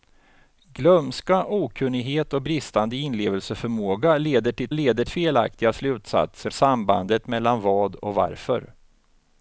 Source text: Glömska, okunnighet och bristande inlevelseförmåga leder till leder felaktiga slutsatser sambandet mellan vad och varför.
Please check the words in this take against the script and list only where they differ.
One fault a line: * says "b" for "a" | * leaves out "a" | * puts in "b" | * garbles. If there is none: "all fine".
all fine